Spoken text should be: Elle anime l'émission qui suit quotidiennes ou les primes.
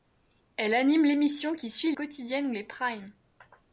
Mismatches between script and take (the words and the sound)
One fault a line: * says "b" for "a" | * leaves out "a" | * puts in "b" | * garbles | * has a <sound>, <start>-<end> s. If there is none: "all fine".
all fine